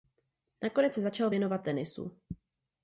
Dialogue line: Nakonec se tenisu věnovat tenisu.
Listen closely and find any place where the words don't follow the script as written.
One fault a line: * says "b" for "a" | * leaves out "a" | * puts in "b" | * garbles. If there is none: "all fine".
* says "začal" for "tenisu"